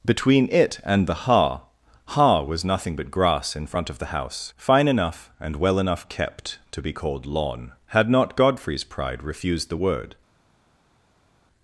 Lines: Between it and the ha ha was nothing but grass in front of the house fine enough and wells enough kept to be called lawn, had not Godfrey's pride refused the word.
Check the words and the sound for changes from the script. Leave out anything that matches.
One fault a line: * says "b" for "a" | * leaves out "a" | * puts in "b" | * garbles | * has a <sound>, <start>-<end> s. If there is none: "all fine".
* says "well" for "wells"